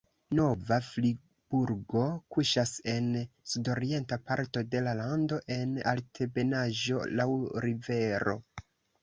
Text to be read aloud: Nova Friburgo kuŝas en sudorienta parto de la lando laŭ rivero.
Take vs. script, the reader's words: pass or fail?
fail